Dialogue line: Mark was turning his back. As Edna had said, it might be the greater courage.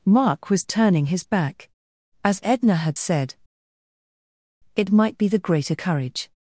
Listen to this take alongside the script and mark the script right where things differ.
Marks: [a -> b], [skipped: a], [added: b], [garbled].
Mark was turning his back. As Edna had said, it might be the greater courage.